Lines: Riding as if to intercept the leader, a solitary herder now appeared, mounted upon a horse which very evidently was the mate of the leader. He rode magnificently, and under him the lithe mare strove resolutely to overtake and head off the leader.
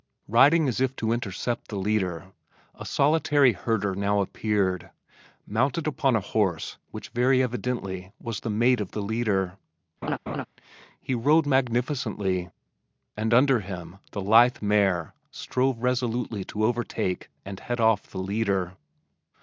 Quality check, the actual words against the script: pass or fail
pass